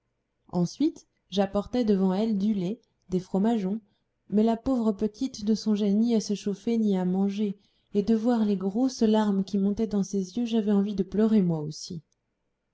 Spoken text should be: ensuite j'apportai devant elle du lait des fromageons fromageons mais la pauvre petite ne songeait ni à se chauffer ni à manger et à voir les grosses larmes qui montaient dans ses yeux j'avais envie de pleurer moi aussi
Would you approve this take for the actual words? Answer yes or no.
no